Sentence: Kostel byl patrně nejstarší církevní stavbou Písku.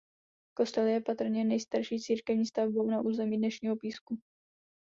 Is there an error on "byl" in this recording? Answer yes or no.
yes